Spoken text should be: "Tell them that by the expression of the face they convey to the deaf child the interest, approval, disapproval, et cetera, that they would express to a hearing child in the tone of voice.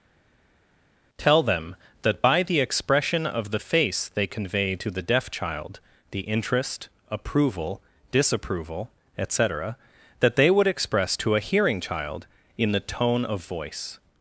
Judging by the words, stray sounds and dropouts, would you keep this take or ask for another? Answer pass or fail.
pass